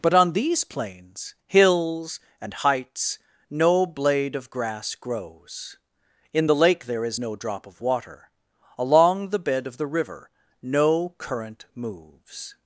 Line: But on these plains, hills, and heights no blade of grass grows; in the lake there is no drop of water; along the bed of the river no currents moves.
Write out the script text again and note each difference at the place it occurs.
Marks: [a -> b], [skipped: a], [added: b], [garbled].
But on these plains, hills, and heights no blade of grass grows; in the lake there is no drop of water; along the bed of the river no [currents -> current] moves.